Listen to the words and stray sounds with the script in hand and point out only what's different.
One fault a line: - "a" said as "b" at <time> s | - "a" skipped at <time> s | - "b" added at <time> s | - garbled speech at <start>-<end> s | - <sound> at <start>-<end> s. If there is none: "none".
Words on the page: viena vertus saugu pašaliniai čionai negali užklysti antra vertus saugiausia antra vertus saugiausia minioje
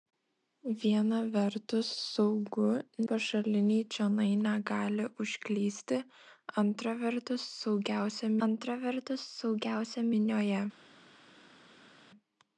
none